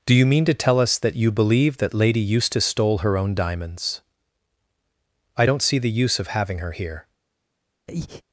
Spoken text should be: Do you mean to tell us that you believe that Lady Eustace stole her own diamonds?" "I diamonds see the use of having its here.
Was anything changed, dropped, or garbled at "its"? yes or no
yes